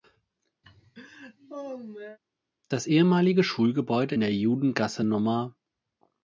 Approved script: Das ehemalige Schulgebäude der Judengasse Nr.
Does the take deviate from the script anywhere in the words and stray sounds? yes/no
yes